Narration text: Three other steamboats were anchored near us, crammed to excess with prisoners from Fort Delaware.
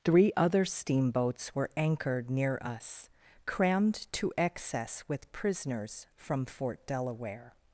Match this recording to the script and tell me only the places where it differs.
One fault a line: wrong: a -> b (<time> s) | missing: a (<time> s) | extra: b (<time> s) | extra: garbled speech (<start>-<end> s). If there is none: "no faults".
no faults